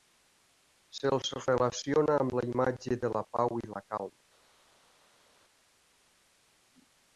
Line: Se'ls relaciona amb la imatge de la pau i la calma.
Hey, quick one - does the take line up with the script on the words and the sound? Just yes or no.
yes